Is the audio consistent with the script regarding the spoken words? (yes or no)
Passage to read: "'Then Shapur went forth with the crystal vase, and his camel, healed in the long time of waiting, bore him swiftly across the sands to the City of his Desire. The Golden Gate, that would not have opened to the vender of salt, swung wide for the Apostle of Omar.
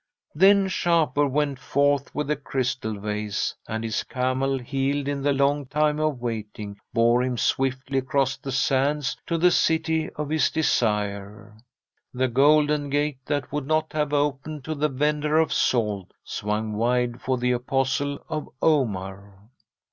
yes